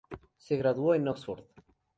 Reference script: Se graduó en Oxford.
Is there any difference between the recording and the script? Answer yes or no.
no